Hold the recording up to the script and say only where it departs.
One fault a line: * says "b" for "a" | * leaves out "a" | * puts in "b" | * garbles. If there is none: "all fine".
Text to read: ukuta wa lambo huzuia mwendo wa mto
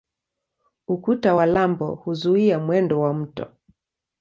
all fine